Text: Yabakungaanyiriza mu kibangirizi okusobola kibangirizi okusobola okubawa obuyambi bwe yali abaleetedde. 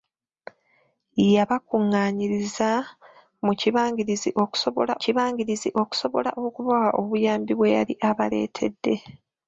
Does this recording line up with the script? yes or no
yes